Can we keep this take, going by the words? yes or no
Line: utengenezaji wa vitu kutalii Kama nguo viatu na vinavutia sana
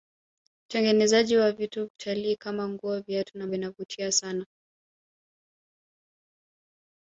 yes